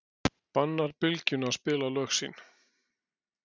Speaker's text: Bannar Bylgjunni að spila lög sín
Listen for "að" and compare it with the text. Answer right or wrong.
right